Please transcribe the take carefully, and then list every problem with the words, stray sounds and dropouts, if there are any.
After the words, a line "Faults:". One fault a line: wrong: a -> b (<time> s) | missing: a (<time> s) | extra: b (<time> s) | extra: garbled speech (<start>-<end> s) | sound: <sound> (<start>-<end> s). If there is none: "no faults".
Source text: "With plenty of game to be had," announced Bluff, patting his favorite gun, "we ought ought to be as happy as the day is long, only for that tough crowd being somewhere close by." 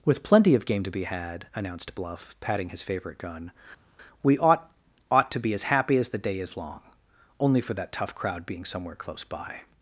"With plenty of game to be had," announced Bluff, patting his favorite gun, "we ought ought to be as happy as the day is long, only for that tough crowd being somewhere close by."
Faults:
no faults